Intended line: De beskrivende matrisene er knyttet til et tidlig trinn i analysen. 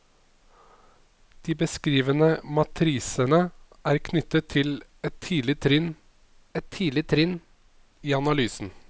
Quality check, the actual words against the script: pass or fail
fail